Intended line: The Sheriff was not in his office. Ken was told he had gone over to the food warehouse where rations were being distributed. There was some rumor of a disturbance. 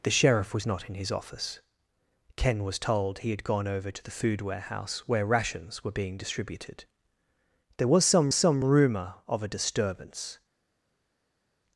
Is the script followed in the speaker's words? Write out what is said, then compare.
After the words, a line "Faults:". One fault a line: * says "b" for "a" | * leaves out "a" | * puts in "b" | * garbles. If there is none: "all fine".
The Sheriff was not in his office. Ken was told he had gone over to the food warehouse where rations were being distributed. There was some some rumor of a disturbance.
Faults:
* puts in "some"